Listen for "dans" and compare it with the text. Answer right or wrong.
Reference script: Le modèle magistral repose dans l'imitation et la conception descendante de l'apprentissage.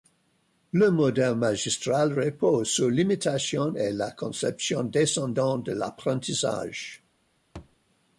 wrong